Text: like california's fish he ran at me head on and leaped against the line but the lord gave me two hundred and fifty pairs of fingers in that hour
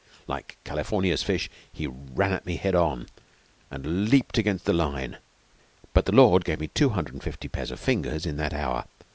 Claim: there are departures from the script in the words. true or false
false